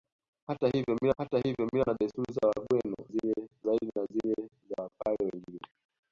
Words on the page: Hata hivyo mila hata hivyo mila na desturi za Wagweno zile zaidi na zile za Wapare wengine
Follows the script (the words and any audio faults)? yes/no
yes